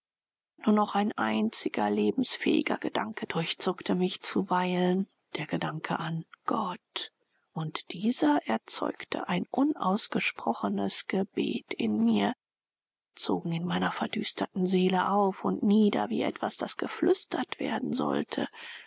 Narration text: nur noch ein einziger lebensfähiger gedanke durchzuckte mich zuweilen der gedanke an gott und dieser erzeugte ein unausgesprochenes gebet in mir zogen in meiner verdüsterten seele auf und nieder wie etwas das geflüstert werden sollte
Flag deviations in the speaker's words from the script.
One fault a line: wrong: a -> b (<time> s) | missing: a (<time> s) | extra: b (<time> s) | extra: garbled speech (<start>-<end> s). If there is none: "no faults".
no faults